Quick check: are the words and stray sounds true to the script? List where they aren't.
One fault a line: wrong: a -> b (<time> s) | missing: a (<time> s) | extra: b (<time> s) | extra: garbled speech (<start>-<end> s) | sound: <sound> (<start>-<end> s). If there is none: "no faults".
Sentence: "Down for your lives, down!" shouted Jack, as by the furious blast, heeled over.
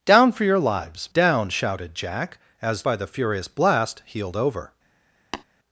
sound: tap (5.3-5.4 s)